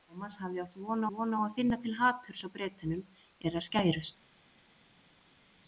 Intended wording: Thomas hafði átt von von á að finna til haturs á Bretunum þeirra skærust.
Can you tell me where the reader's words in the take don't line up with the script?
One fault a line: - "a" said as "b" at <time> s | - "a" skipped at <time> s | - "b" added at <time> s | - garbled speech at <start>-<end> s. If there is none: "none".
none